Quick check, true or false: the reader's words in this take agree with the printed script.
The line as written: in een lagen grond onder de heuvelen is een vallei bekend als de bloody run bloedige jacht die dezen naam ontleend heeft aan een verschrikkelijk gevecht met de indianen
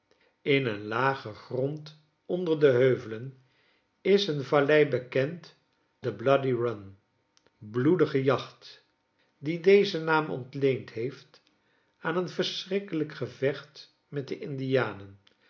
false